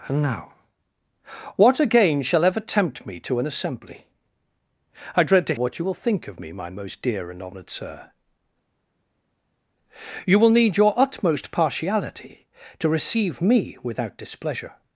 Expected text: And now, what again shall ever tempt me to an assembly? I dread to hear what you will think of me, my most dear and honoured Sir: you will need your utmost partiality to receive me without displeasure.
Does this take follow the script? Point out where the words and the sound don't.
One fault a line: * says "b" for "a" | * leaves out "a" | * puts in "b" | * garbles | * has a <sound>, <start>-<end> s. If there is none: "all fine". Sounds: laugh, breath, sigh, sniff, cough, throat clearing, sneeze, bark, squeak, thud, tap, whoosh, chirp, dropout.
* leaves out "hear"